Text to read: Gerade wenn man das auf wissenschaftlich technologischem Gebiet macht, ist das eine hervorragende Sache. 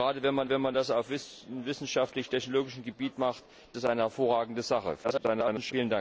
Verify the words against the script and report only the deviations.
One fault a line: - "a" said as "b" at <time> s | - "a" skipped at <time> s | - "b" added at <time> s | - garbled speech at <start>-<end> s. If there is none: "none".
- "wenn man" added at 0.5 s
- "ist" skipped at 3.4 s
- garbled speech at 5.0-5.7 s